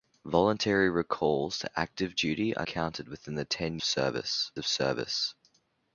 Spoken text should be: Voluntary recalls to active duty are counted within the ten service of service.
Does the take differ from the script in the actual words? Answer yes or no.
no